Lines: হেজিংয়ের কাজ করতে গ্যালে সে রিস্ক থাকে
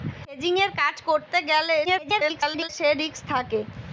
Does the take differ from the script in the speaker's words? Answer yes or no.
yes